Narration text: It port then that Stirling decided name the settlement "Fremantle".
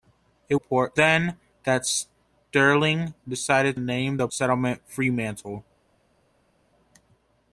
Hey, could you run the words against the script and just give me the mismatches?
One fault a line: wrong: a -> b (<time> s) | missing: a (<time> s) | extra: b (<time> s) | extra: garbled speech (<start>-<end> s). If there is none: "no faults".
no faults